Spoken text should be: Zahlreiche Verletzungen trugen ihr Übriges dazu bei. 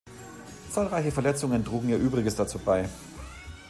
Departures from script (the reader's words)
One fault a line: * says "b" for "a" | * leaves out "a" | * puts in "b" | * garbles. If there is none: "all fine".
all fine